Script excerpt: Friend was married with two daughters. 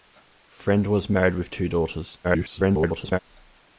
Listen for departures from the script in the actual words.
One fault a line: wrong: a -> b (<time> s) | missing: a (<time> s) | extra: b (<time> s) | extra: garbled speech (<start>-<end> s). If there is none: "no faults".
extra: garbled speech (2.2-3.2 s)